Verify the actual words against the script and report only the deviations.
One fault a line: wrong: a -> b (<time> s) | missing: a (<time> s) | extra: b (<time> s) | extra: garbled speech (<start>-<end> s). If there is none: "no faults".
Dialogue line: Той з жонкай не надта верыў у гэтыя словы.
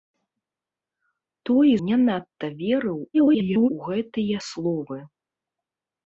missing: з жонкай (1.7 s)
extra: garbled speech (3.1-3.7 s)